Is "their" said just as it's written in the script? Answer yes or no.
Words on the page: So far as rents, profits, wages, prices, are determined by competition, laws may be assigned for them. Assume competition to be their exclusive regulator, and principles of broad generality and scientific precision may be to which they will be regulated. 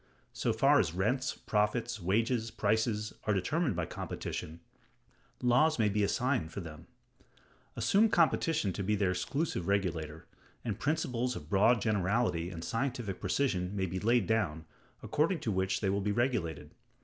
yes